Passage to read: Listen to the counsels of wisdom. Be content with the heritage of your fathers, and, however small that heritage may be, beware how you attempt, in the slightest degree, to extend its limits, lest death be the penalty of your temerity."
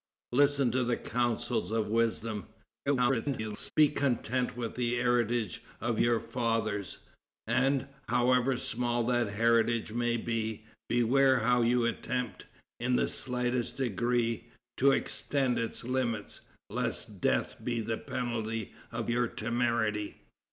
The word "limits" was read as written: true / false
true